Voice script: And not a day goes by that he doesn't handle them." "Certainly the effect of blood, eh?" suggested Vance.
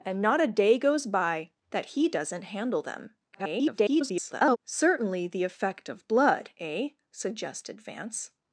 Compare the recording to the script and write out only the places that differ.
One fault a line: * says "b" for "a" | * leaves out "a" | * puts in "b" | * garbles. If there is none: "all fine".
* garbles